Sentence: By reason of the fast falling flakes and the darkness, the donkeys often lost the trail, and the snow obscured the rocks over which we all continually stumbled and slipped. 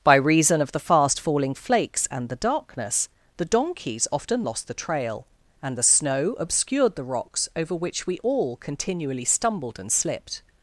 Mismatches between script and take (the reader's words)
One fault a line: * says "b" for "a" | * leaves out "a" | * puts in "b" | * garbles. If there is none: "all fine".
all fine